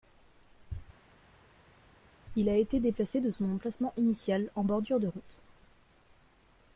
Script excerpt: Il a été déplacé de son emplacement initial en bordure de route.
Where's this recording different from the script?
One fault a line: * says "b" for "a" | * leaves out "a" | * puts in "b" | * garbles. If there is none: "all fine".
all fine